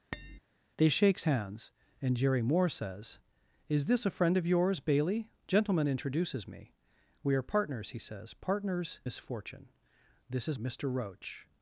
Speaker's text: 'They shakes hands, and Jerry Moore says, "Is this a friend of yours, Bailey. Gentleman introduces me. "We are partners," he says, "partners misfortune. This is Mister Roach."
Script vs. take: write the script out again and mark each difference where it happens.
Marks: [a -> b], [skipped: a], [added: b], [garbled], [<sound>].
[tap] 'They shakes hands, and Jerry Moore says, "Is this a friend of yours, Bailey. Gentleman introduces me. "We are partners," he says, "partners misfortune. This is Mister Roach."